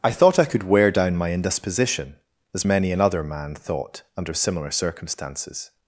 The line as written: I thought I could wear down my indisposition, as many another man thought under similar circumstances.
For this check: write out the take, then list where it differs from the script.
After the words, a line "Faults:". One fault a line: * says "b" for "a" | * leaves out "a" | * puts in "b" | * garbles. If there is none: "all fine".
I thought I could wear down my indisposition, as many another man thought under similar circumstances.
Faults:
all fine